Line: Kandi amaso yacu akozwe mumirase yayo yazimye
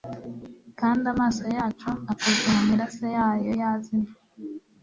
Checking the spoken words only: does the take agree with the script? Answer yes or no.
yes